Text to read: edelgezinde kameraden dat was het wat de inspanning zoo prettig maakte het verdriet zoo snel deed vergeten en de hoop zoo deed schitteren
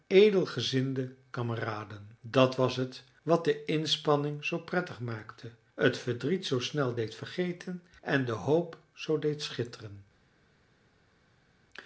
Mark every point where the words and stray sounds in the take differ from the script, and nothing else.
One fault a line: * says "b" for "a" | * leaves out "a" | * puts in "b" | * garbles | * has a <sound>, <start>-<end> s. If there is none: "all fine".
all fine